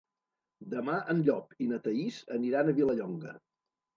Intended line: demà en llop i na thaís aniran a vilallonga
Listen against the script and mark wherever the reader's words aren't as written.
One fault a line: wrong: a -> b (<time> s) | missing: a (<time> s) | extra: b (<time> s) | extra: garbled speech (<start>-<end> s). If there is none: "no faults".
no faults